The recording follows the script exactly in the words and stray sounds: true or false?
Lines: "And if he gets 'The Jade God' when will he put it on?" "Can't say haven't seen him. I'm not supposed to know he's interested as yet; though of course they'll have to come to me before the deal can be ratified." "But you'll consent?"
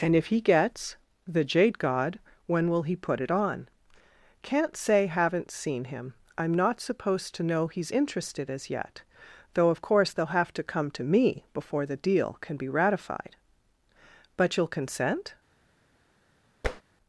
false